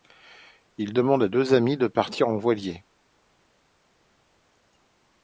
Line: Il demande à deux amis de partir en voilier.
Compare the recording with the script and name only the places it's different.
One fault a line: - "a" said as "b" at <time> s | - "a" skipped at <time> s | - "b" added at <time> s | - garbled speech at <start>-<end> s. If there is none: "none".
none